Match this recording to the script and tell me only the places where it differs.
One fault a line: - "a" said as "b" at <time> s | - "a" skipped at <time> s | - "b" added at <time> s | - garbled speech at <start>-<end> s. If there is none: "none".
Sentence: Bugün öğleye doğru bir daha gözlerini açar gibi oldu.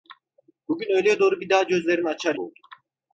- "gibi" skipped at 2.4 s